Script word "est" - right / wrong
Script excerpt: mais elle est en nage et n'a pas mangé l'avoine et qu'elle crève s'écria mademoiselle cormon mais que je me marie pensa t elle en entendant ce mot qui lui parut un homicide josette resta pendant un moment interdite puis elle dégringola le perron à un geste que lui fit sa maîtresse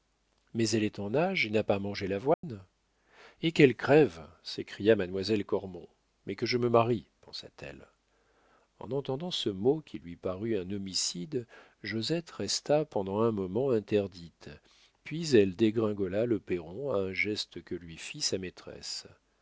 right